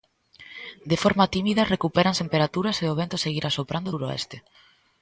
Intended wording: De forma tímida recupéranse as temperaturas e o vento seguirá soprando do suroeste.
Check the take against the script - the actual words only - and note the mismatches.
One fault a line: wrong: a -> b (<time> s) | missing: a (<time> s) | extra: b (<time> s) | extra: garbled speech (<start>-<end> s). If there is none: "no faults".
missing: as (2.2 s)
missing: do (3.9 s)